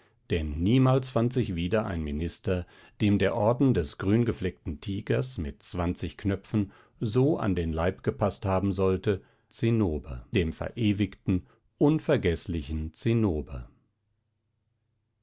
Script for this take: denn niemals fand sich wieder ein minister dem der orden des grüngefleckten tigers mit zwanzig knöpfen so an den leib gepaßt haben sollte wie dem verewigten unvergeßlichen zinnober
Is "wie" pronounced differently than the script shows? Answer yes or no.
yes